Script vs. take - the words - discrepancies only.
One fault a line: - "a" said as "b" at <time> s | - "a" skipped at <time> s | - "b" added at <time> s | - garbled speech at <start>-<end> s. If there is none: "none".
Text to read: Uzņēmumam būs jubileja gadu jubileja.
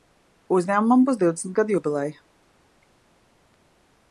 - "jubileja" said as "divdesmit" at 1.2 s